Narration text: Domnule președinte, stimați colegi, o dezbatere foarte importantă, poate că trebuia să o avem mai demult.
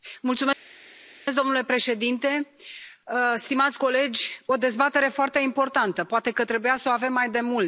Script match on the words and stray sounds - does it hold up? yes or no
yes